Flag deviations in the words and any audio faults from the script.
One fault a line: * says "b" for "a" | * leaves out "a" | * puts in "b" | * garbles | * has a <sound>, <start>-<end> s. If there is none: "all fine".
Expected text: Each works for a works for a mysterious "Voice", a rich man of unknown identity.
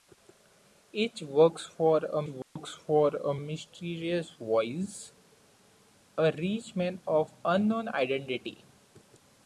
* has a dropout, 2.4-2.6 s